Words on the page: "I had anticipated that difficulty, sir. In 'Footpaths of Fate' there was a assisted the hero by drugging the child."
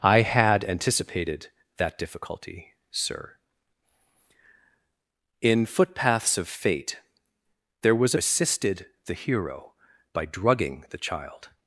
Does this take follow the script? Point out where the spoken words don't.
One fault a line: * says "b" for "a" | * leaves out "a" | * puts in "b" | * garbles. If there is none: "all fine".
all fine